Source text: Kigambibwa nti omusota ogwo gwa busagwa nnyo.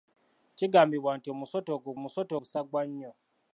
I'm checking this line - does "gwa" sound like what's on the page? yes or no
no